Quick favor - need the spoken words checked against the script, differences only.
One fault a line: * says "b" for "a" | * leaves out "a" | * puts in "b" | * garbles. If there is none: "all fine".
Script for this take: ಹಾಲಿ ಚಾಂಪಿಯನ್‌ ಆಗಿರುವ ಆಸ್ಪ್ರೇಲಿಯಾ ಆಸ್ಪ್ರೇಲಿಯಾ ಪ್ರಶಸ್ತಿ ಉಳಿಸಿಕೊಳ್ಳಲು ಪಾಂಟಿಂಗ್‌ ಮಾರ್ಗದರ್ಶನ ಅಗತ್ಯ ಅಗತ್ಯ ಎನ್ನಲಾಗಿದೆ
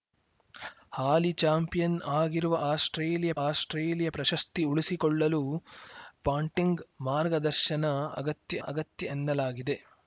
all fine